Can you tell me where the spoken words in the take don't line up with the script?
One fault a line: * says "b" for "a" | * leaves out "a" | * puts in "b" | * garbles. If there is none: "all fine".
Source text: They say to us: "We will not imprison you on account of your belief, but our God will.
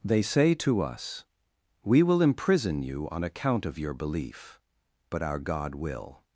* leaves out "not"